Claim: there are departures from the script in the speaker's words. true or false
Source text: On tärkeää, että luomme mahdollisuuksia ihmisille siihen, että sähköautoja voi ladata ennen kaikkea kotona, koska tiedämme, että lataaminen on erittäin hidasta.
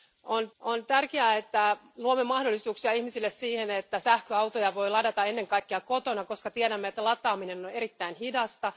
true